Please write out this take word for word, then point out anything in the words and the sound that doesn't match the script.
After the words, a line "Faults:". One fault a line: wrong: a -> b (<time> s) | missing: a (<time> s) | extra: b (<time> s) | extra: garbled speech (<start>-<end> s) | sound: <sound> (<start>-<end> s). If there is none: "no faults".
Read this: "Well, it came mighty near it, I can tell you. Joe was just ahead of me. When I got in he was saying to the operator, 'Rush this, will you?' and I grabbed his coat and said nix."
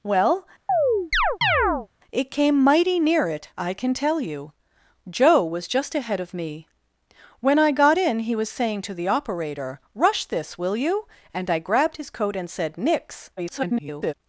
"Well, it came mighty near it, I can tell you. Joe was just ahead of me. When I got in he was saying to the operator, 'Rush this, will you?' and I grabbed his coat and said nix." [garbled]
Faults:
sound: chirp (0.7-1.9 s)
extra: garbled speech (13.4-14.1 s)